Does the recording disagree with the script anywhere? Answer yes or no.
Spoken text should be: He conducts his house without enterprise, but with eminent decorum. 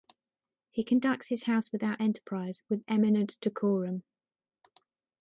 yes